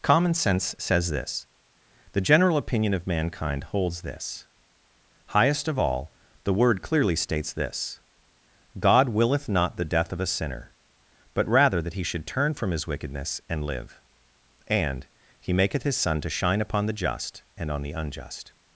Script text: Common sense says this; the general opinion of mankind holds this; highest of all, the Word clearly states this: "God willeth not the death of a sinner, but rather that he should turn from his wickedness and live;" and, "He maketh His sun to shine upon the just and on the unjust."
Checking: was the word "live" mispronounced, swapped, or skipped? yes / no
no